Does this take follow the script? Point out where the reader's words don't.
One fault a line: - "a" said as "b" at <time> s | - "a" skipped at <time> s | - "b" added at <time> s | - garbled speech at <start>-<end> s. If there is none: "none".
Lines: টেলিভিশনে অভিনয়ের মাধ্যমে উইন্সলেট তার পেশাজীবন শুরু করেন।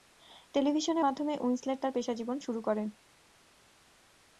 - "অভিনয়ের" skipped at 1.0 s